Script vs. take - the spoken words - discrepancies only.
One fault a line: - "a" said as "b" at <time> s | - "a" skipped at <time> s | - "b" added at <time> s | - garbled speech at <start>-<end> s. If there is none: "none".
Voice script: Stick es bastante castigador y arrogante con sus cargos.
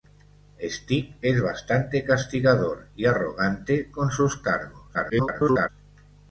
- garbled speech at 4.9-5.7 s